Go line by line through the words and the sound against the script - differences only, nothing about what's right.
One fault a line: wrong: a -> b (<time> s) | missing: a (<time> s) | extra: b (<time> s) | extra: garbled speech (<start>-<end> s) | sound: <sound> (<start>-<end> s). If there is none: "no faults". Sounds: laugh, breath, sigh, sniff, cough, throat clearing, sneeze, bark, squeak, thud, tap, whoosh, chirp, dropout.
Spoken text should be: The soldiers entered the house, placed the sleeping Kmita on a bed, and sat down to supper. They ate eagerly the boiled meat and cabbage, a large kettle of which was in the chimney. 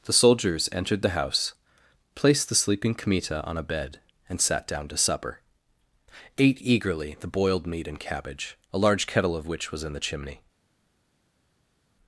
missing: They (5.4 s)